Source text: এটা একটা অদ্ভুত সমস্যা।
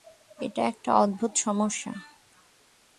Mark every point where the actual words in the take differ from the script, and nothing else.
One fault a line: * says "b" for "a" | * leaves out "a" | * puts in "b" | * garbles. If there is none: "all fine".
all fine